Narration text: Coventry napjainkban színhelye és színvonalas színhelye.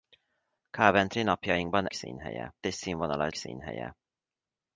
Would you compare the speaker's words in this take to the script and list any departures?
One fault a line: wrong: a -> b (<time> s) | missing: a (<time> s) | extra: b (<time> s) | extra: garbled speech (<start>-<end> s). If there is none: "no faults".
no faults